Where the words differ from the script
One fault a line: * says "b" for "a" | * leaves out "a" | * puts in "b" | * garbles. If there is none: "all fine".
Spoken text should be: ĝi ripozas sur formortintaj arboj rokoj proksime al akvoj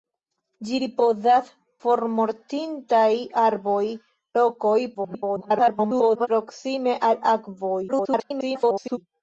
* leaves out "sur"
* garbles
* garbles